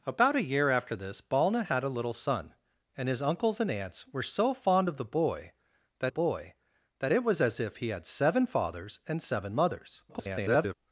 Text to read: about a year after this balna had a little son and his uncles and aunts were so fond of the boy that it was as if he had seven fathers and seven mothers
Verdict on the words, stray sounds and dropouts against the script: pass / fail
fail